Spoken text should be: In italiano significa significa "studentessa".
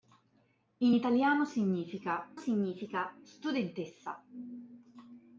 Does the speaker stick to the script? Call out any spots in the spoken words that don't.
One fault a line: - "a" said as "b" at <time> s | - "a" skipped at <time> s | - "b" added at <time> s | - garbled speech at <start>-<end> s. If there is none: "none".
none